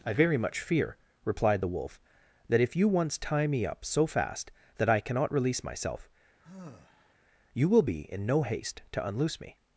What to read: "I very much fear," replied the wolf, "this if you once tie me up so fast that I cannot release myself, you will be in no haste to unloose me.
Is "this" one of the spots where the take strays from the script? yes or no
yes